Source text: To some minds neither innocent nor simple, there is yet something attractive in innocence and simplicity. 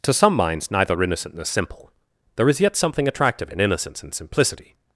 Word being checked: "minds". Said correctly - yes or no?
yes